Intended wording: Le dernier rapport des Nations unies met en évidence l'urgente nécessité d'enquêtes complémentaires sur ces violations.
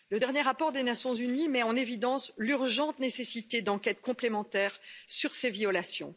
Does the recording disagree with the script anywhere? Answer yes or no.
no